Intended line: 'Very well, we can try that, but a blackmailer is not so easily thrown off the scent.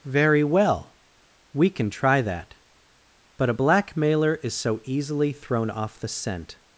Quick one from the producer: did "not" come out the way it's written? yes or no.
no